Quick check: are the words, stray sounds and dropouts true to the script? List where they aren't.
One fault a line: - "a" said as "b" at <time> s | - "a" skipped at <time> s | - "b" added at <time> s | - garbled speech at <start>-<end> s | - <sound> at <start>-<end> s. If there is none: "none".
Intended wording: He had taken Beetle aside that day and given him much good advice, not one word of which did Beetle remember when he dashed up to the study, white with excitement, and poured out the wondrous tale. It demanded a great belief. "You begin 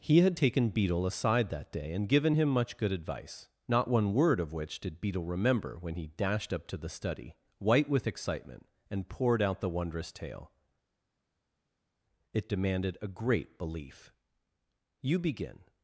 none